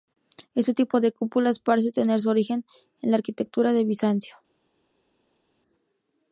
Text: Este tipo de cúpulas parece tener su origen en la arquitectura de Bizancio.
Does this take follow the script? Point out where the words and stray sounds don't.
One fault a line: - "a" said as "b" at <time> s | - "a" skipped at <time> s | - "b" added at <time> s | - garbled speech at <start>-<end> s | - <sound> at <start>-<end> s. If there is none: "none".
none